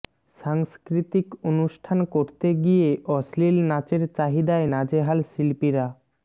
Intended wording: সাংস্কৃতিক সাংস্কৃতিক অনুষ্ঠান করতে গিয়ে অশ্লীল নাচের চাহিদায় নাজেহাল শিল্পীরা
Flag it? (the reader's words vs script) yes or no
yes